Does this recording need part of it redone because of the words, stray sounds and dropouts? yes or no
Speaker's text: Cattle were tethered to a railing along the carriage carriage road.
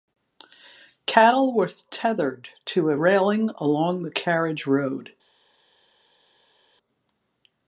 yes